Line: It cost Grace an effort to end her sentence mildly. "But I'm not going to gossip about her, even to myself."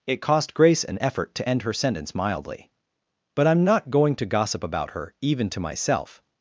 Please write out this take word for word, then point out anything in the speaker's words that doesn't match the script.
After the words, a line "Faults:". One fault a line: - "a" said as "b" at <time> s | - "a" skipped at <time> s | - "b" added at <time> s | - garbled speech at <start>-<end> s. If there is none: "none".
It cost Grace an effort to end her sentence mildly. "But I'm not going to gossip about her, even to myself."
Faults:
none